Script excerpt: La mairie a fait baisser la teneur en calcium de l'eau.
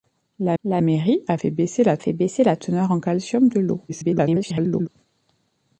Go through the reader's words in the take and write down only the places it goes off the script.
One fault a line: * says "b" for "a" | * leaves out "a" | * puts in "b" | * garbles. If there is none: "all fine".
* puts in "la"
* puts in "fait baisser la"
* garbles